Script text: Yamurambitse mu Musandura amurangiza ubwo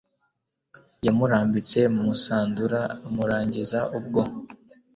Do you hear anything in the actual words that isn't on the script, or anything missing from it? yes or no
no